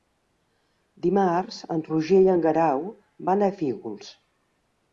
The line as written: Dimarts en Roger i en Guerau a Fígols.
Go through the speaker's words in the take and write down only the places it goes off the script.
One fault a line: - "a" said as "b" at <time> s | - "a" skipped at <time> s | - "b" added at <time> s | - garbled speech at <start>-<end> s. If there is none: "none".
- "van" added at 3.3 s